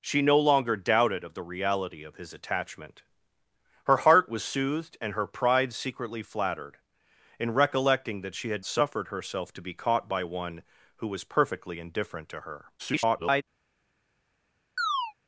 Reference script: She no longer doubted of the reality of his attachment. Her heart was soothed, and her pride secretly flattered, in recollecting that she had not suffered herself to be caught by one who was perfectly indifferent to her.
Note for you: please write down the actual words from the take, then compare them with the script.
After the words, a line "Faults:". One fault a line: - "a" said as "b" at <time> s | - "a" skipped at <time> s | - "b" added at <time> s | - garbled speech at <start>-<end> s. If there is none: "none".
She no longer doubted of the reality of his attachment. Her heart was soothed, and her pride secretly flattered, in recollecting that she had suffered herself to be caught by one who was perfectly indifferent to her. [garbled]
Faults:
- "not" skipped at 8.7 s
- garbled speech at 12.8-13.4 s